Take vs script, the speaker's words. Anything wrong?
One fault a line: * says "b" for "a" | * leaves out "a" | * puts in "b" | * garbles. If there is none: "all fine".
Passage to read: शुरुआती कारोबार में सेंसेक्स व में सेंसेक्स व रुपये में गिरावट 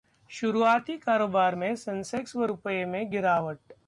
* leaves out "में सेंसेक्स व"